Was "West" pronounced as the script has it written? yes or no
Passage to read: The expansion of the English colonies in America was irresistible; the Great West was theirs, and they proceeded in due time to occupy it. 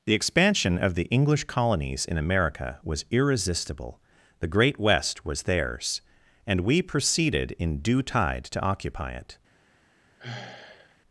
yes